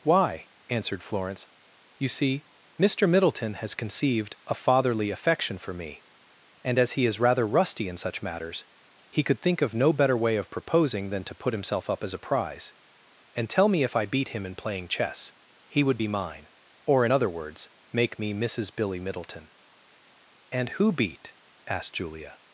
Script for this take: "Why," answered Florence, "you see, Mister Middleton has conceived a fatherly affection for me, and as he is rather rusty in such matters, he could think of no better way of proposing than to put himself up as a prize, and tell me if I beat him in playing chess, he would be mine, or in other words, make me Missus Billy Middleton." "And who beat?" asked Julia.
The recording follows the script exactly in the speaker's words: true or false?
true